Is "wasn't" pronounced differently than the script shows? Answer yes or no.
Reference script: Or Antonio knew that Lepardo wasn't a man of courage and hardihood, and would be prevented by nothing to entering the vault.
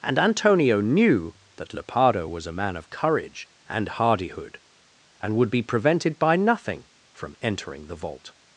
yes